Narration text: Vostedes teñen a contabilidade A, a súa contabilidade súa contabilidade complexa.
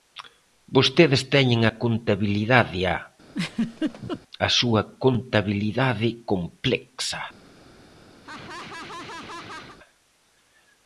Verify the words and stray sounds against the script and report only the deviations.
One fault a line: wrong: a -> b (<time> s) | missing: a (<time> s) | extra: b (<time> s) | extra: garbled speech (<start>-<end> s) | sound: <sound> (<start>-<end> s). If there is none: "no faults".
sound: laugh (3.3-4.2 s)
missing: súa contabilidade (6.1 s)
sound: laugh (8.2-9.8 s)